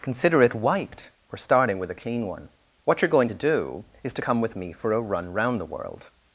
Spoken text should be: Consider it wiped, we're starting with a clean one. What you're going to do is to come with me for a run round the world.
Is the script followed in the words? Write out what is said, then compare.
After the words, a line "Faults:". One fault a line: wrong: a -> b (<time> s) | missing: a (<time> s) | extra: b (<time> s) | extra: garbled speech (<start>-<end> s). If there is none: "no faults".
Consider it wiped, we're starting with a clean one. What you're going to do is to come with me for a run round the world.
Faults:
no faults